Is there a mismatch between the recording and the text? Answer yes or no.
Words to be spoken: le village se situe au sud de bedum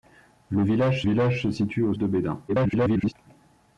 yes